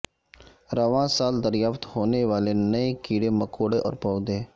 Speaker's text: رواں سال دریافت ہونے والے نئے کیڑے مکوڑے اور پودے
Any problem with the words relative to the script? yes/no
no